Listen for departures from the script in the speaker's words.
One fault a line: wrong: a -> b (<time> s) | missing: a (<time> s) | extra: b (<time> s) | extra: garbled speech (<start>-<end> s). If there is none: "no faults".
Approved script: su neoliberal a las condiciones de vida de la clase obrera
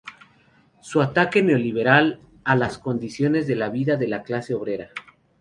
extra: ataque (1.0 s)